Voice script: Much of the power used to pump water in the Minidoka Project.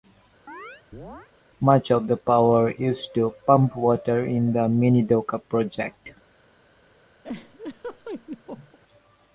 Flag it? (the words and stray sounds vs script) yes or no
yes